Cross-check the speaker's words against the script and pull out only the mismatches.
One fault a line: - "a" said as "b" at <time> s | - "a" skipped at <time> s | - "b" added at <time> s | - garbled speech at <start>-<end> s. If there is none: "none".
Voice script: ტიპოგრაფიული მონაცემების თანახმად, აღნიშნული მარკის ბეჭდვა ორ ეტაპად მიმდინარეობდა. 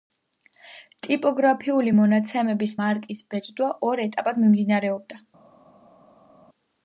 - "თანახმად აღნიშნული" skipped at 2.7 s